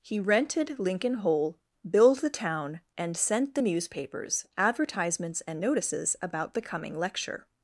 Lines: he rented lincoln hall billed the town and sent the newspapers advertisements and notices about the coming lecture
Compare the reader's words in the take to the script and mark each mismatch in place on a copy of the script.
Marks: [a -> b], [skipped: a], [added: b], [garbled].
he rented lincoln [hall -> hole] billed the town and sent the newspapers advertisements and notices about the coming lecture